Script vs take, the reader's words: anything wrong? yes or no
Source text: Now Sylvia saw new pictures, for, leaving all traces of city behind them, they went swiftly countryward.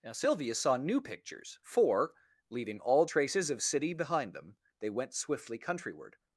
no